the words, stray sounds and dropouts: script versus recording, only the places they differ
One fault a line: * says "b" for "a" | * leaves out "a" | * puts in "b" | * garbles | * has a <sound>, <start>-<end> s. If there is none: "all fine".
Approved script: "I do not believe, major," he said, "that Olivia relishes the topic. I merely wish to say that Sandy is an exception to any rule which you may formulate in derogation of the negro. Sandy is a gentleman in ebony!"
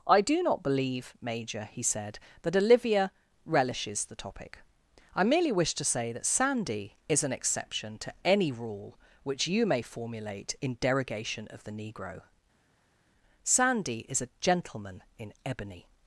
all fine